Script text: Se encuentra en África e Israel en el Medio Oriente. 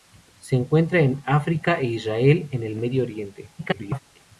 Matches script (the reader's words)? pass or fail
fail